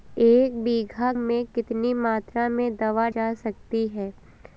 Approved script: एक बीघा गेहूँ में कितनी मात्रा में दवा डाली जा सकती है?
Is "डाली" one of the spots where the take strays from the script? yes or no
yes